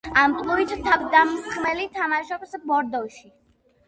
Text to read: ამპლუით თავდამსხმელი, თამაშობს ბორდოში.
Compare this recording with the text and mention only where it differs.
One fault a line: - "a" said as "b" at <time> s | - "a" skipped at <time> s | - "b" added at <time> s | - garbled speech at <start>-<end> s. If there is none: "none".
none